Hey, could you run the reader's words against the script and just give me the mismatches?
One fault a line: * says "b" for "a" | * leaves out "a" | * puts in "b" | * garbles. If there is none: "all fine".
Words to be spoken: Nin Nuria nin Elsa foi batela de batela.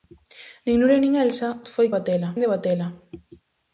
all fine